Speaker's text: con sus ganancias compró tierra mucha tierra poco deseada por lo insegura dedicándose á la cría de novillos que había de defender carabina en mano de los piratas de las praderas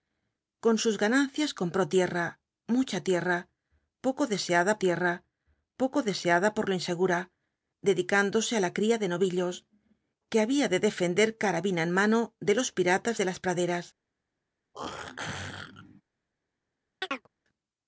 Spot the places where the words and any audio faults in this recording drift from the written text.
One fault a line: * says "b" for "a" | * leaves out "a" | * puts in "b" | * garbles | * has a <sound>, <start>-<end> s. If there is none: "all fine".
* puts in "tierra poco deseada"
* has a throat clearing, 14.7-16.0 s
* has a chirp, 17.0-17.3 s